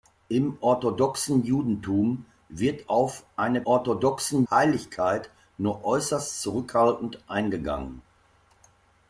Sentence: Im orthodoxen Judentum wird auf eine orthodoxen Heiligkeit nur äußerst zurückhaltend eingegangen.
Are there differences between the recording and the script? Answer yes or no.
no